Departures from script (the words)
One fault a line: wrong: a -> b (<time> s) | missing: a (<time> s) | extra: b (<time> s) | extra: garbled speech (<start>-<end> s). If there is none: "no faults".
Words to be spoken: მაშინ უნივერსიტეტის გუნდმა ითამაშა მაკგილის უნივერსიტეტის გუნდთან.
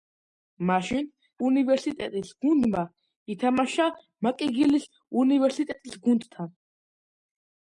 no faults